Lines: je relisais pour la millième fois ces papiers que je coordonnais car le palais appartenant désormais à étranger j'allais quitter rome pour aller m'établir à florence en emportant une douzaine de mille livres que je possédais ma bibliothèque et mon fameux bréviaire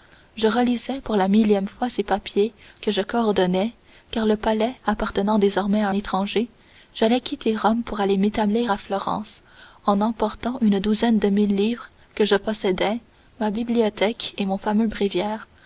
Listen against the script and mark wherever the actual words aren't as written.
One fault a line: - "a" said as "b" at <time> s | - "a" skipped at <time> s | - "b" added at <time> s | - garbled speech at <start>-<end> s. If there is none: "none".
none